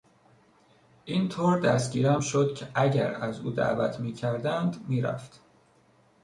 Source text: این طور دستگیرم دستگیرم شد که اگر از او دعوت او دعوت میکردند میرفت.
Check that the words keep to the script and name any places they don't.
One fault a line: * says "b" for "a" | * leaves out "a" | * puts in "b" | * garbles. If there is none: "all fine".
* leaves out "دستگیرم"
* leaves out "او دعوت"